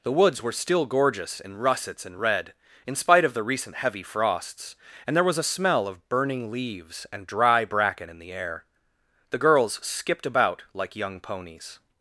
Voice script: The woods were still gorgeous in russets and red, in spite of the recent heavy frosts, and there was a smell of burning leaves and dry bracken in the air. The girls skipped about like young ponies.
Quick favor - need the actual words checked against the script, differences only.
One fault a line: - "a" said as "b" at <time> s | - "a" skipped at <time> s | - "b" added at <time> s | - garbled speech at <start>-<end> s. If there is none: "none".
none